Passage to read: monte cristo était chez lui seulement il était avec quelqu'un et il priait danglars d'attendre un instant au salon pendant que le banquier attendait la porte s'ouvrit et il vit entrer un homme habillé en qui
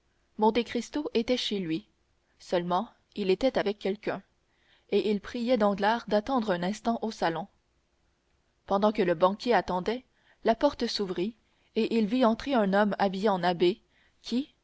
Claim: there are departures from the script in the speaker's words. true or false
true